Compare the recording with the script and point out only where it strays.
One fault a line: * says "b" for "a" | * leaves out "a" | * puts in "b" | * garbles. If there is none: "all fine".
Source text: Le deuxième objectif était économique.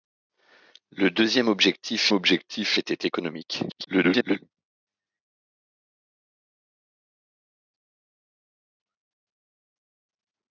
* puts in "objectif"
* garbles